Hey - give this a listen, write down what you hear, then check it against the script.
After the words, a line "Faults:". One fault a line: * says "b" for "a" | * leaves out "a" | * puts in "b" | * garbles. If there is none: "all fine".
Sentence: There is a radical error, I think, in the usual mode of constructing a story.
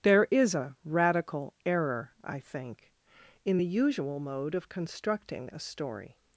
There is a radical error, I think, in the usual mode of constructing a story.
Faults:
all fine